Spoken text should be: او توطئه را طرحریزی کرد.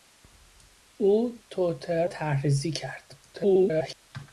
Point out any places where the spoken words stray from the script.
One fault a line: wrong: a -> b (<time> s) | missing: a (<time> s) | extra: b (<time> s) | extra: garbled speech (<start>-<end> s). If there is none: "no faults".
missing: را (2.0 s)
extra: garbled speech (3.3-3.9 s)